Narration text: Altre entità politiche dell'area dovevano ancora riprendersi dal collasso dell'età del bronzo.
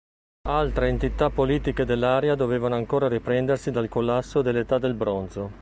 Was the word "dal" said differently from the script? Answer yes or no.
no